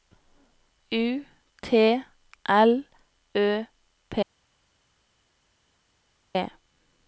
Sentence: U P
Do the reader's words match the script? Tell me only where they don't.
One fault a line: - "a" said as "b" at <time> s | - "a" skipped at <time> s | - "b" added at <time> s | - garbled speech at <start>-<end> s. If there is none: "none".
- "T L Ø" added at 1.6 s